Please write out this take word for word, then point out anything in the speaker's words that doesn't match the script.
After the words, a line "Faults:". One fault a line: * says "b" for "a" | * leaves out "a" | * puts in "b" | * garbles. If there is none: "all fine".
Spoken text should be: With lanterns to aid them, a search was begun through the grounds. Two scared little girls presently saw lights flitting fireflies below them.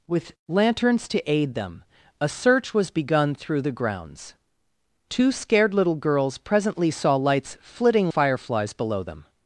With lanterns to aid them, a search was begun through the grounds. Two scared little girls presently saw lights flitting fireflies below them.
Faults:
all fine